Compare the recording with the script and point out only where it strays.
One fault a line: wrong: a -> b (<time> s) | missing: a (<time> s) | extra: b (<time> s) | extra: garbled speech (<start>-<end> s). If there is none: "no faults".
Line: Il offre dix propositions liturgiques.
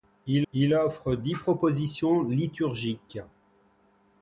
extra: il (0.5 s)